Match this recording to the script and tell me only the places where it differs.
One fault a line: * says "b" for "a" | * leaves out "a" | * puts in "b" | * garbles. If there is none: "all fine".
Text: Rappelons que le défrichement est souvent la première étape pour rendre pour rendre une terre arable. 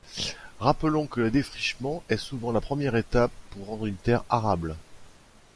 * leaves out "pour rendre"